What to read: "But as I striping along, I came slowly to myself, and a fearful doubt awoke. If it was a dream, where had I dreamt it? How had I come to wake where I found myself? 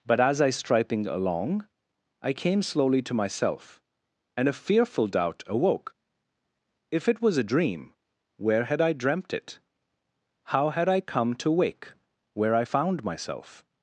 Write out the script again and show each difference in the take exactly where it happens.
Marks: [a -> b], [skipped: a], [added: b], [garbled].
"But as I striping along, I came slowly to myself, and a fearful doubt awoke. If it was a dream, where had I dreamt it? How had I come to wake where I found myself?